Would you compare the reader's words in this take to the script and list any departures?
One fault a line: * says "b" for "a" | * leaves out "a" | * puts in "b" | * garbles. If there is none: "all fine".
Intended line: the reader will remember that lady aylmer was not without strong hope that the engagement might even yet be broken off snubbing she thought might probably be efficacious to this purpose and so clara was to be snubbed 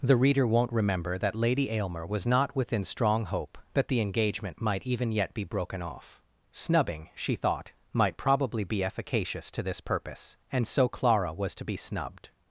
* says "won't" for "will"
* says "within" for "without"